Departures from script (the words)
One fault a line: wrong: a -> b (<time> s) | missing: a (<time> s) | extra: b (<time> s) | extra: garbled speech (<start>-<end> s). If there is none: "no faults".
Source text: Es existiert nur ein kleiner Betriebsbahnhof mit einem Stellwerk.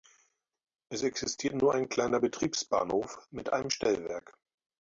no faults